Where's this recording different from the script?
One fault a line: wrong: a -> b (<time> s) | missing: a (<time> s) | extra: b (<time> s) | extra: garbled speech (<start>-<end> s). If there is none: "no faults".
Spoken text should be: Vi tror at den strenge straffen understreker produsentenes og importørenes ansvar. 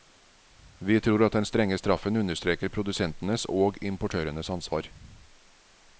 no faults